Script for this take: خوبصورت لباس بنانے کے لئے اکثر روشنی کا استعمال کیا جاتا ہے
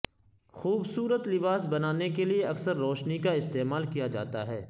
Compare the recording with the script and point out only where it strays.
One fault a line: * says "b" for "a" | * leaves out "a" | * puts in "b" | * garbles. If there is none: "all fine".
all fine